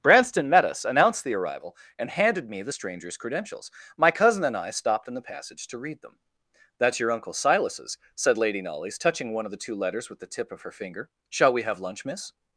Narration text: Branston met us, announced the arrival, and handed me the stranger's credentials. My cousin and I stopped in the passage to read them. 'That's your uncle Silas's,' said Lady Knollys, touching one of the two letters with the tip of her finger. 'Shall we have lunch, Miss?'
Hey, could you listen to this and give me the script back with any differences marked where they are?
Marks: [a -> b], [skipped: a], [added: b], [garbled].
Branston met us, announced the arrival, and handed me the stranger's credentials. My cousin and I stopped in the passage to read them. 'That's your uncle Silas's,' said Lady Knollys, touching one of the two letters with the tip of her finger. 'Shall we have lunch, Miss?'